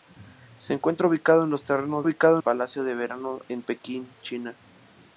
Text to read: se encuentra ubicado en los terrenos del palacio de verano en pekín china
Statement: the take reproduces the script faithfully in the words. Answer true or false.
false